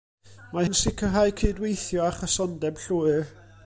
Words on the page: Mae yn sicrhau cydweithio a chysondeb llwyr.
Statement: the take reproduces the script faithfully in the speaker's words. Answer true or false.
true